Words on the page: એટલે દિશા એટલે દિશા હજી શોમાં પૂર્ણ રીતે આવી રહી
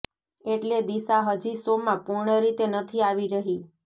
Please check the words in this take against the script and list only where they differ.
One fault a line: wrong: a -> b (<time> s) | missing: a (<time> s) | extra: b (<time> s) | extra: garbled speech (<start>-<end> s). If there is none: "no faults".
missing: એટલે દિશા (1.2 s)
extra: નથી (2.7 s)